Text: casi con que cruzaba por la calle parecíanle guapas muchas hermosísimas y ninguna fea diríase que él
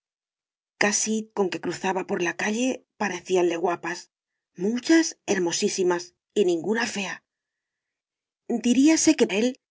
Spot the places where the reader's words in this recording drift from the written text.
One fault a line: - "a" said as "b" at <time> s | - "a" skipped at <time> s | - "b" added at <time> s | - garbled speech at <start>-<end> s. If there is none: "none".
none